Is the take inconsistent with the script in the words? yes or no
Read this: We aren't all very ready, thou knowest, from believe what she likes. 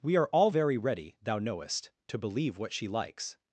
yes